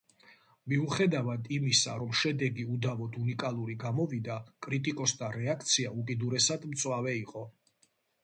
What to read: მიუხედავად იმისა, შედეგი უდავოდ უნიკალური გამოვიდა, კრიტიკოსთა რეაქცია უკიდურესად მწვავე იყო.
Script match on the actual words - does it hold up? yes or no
no